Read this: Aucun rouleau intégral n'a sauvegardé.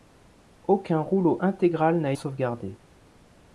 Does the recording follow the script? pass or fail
pass